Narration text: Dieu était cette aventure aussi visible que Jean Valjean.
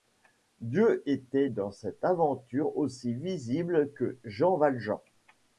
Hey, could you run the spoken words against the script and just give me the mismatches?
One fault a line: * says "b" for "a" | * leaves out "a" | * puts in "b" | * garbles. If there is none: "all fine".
* puts in "dans"